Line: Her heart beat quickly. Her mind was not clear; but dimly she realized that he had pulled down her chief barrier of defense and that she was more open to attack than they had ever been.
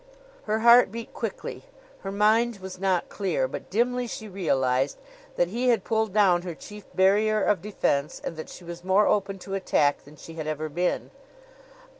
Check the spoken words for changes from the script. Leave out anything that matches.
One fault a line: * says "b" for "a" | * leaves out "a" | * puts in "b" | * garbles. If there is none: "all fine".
* says "she" for "they"